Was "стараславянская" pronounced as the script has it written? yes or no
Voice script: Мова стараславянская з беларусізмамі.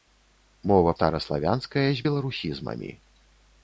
yes